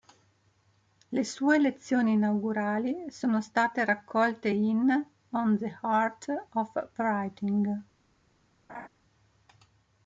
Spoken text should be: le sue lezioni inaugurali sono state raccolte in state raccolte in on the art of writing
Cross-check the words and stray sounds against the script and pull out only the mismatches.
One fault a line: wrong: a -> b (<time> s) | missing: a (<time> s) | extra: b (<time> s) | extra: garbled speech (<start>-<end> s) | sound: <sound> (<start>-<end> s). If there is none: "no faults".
missing: state raccolte in (4.9 s)
sound: laugh (8.7-8.9 s)